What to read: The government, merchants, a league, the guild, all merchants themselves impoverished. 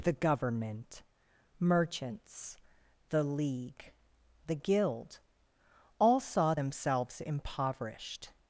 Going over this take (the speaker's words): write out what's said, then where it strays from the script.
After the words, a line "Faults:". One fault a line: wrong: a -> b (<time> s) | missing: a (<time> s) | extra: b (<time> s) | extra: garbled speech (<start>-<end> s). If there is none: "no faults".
The government, merchants, the league, the guild, all saw themselves impoverished.
Faults:
wrong: a -> the (3.1 s)
wrong: merchants -> saw (6.2 s)